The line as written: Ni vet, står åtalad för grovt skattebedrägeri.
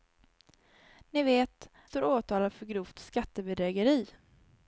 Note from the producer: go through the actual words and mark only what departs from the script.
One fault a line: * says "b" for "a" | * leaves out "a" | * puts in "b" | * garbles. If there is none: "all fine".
all fine